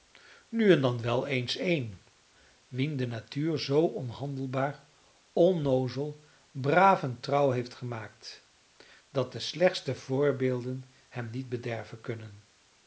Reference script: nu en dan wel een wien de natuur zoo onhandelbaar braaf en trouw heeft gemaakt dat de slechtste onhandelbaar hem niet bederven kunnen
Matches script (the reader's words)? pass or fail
fail